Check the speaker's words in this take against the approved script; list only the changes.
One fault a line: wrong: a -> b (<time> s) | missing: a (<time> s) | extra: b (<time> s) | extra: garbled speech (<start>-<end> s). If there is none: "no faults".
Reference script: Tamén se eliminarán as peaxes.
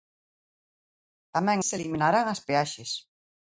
no faults